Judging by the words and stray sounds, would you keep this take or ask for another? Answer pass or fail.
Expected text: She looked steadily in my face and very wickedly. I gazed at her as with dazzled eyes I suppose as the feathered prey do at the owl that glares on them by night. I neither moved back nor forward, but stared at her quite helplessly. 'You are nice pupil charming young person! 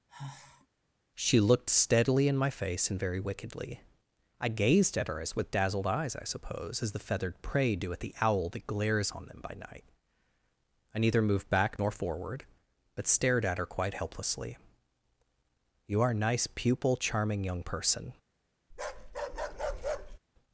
fail